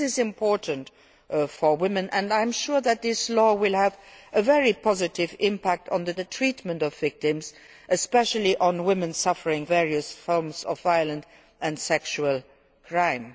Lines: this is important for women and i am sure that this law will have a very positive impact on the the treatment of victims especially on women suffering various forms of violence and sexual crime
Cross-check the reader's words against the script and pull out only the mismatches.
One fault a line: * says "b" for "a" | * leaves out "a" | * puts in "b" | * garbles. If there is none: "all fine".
all fine